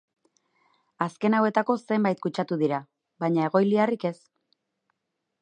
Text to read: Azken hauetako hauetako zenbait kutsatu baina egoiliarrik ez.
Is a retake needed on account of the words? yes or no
yes